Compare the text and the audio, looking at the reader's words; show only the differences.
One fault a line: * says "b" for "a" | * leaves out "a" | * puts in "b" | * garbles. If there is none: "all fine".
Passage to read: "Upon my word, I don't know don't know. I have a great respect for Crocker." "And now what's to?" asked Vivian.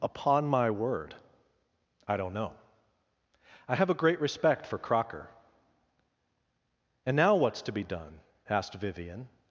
* leaves out "don't know"
* puts in "be done"